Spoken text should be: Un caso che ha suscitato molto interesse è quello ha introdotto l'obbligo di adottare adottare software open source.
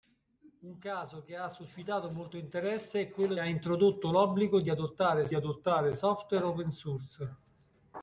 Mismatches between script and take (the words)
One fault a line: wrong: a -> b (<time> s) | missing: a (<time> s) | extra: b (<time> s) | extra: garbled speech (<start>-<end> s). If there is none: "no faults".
no faults